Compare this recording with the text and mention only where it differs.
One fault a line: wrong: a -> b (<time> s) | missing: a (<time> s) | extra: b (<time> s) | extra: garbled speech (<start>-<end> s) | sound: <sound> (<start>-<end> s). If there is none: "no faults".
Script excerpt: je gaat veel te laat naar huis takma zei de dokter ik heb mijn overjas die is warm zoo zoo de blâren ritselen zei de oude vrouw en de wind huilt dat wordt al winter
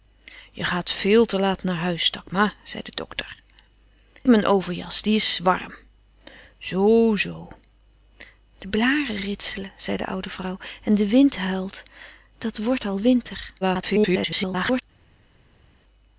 missing: ik heb (3.4 s)
extra: garbled speech (13.6-14.8 s)